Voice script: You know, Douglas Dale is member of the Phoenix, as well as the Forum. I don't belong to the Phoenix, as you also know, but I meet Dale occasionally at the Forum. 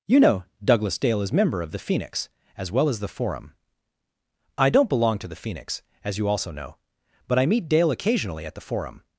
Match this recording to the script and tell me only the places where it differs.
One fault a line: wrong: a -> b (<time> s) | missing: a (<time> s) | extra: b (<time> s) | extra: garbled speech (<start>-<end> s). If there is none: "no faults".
no faults